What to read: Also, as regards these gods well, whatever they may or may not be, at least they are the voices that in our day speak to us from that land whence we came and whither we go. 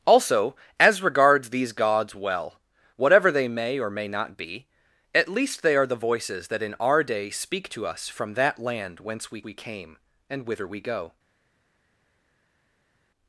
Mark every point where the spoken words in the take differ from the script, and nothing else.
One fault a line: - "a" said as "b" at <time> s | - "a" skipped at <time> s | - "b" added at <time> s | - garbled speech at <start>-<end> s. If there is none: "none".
- "we" added at 9.4 s